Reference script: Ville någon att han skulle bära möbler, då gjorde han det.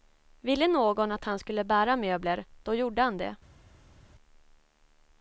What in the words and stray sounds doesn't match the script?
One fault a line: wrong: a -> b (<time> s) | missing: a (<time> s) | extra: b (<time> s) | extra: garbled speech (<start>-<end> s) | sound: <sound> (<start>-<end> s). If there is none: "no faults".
no faults